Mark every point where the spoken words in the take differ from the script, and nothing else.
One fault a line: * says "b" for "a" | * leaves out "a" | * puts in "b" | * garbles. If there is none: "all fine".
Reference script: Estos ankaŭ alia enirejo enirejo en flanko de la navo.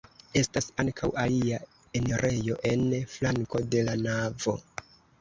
* says "Estas" for "Estos"
* leaves out "enirejo"